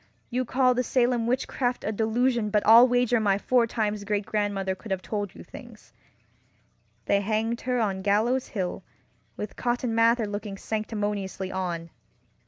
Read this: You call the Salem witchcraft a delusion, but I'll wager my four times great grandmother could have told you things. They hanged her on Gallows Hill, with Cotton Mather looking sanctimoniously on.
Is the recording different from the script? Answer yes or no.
no